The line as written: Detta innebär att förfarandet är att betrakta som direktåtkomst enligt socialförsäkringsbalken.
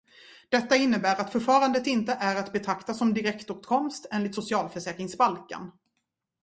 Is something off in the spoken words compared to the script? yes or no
yes